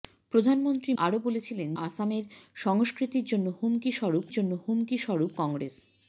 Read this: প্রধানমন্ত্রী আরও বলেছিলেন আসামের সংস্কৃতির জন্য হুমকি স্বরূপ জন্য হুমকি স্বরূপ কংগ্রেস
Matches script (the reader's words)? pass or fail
pass